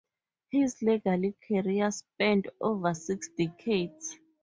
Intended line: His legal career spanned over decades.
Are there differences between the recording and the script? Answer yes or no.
yes